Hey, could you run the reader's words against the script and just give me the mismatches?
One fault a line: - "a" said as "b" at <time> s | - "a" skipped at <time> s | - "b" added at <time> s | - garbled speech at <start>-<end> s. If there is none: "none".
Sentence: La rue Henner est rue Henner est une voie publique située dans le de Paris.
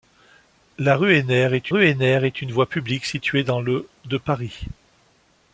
none